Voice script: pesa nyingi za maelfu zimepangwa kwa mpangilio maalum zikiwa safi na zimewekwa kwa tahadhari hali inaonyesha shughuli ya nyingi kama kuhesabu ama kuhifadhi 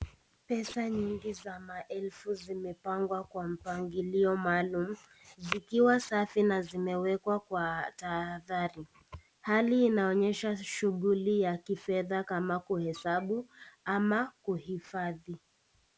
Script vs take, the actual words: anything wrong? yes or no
yes